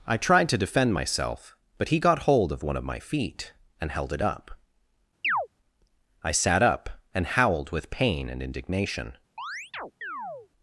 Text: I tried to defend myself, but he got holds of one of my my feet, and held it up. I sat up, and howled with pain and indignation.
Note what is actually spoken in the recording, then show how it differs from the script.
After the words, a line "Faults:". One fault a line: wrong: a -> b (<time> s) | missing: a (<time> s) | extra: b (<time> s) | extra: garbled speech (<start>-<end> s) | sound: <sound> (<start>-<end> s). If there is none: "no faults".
I tried to defend myself, but he got hold of one of my feet, and held it up. I sat up, and howled with pain and indignation.
Faults:
wrong: holds -> hold (2.2 s)
missing: my (3.0 s)
sound: chirp (5.2-5.5 s)
sound: chirp (9.4-10.5 s)